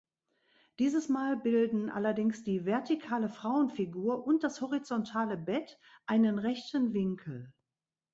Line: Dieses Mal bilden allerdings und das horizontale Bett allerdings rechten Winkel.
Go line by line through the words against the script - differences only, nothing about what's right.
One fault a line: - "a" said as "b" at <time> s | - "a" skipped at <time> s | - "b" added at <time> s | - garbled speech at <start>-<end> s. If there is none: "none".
- "die vertikale Frauenfigur" added at 2.4 s
- "allerdings" said as "einen" at 6.1 s